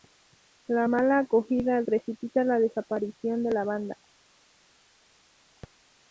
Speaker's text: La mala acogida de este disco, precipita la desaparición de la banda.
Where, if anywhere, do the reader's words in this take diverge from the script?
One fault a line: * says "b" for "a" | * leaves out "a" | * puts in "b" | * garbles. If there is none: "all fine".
* leaves out "de este disco"